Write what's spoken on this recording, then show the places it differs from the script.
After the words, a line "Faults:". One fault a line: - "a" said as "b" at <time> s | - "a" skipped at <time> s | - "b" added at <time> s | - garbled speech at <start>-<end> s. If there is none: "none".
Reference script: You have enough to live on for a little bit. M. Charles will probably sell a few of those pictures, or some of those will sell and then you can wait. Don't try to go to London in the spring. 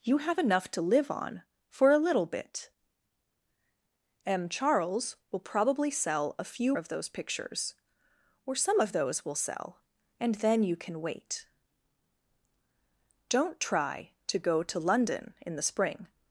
You have enough to live on for a little bit. M. Charles will probably sell a few of those pictures, or some of those will sell and then you can wait. Don't try to go to London in the spring.
Faults:
none